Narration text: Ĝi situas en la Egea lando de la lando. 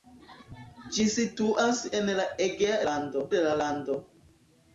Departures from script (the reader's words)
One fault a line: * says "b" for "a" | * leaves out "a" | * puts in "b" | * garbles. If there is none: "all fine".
all fine